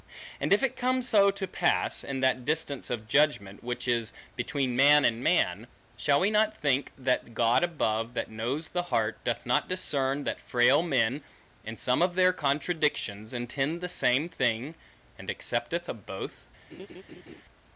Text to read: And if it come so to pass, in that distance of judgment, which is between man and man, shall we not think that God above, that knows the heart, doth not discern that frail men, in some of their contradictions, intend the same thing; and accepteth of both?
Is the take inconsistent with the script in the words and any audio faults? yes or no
yes